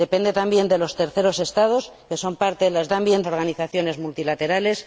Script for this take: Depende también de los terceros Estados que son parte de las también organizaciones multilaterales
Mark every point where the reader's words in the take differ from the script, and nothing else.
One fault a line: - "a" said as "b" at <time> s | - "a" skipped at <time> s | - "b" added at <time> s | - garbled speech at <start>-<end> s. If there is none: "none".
none